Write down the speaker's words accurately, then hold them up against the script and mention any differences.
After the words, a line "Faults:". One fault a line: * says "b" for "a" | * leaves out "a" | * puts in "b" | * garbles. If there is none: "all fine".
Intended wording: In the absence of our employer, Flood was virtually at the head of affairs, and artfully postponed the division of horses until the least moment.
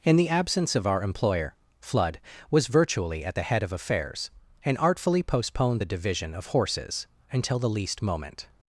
In the absence of our employer, Flood was virtually at the head of affairs, and artfully postponed the division of horses until the least moment.
Faults:
all fine